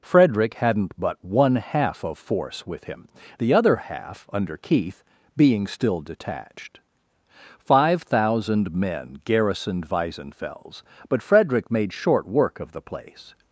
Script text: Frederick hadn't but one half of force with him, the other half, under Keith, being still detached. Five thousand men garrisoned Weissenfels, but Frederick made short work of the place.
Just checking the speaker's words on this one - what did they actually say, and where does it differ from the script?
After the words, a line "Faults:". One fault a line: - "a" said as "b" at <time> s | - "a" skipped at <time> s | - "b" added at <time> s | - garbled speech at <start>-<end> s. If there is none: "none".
Frederick hadn't but one half of force with him, the other half, under Keith, being still detached. Five thousand men garrisoned Weissenfels, but Frederick made short work of the place.
Faults:
none